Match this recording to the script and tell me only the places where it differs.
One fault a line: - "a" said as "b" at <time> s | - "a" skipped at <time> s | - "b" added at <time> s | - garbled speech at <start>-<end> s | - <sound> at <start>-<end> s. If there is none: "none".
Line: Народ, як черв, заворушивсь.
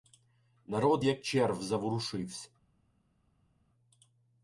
none